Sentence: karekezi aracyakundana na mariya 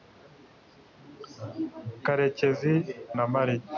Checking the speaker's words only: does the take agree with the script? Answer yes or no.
no